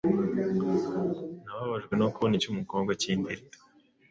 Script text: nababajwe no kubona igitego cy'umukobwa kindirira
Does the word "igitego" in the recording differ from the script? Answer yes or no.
yes